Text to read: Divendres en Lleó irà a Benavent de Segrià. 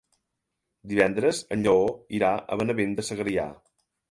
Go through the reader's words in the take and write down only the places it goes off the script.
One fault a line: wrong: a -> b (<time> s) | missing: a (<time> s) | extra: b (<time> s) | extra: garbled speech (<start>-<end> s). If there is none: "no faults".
no faults